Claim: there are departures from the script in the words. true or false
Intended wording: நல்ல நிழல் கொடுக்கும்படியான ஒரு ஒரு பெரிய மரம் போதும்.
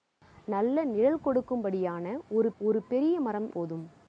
false